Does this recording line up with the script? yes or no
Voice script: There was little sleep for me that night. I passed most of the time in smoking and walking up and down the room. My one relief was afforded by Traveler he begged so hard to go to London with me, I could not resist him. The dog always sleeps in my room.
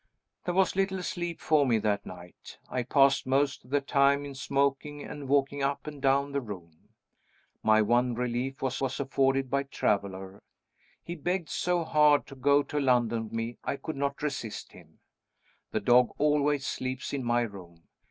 no